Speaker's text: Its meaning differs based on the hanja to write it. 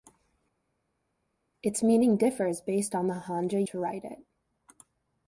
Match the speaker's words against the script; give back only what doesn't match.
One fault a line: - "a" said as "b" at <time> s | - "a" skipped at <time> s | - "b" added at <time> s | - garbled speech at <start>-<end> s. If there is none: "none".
none